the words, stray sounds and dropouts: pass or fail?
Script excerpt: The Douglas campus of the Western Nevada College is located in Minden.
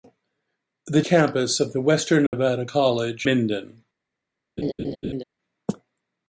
fail